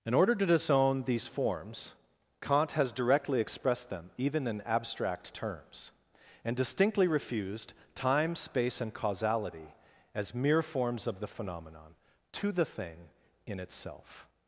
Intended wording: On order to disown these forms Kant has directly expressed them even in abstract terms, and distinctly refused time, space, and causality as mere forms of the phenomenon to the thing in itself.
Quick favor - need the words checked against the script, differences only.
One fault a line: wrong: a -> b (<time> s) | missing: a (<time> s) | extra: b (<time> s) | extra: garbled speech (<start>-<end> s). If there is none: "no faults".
wrong: On -> In (0.0 s)